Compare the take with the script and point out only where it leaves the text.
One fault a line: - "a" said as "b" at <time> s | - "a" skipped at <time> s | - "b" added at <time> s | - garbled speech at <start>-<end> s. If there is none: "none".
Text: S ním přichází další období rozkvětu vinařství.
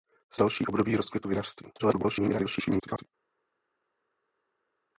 - "ním přichází" skipped at 0.4 s
- garbled speech at 1.8-3.1 s